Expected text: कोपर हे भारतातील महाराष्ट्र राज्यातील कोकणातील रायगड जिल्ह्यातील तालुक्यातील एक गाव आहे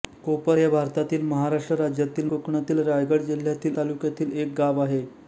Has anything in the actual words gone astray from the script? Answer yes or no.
no